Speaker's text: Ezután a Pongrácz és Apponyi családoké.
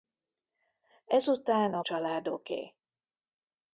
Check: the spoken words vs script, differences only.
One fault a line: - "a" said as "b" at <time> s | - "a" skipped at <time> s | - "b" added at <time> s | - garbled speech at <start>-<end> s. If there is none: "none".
- "Pongrácz és Apponyi" skipped at 1.8 s